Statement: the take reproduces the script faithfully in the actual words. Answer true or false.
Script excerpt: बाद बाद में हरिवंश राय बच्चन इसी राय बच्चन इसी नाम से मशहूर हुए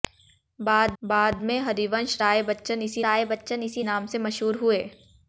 true